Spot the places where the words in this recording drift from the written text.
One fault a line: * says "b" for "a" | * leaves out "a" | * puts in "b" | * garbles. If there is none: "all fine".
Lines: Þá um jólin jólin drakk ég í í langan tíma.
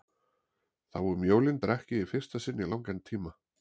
* leaves out "jólin"
* puts in "fyrsta sinn"